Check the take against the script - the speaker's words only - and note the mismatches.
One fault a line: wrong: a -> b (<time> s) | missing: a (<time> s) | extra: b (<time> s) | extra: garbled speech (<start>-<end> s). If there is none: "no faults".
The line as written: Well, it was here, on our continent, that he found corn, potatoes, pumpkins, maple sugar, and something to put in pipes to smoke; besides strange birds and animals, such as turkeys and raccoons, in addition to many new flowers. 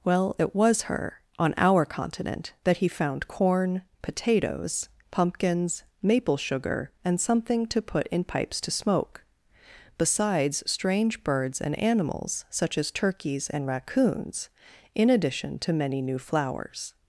wrong: here -> her (0.8 s)